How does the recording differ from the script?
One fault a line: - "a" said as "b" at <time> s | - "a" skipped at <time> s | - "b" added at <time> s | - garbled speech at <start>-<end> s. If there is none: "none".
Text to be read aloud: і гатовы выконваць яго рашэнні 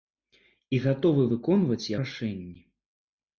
- "яго" skipped at 1.9 s